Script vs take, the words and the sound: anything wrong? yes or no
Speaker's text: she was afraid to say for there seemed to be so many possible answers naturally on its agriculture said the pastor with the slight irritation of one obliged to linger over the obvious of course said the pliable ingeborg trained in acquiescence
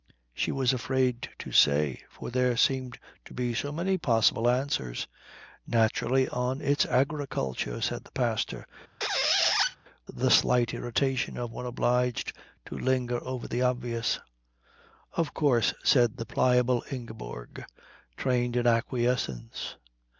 yes